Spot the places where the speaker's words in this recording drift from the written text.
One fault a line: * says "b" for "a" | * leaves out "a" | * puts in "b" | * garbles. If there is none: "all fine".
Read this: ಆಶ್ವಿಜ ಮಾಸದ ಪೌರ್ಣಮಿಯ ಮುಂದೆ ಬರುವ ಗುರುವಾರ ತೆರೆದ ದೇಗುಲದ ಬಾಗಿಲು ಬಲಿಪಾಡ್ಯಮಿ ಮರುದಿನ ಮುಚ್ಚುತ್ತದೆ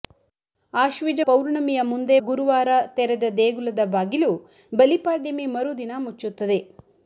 * leaves out "ಮಾಸದ"
* leaves out "ಬರುವ"